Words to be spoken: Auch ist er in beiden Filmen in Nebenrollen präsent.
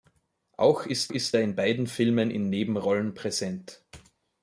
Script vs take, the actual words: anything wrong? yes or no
yes